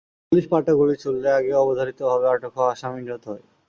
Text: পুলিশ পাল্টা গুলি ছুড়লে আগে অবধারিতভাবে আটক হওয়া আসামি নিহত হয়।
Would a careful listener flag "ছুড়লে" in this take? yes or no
no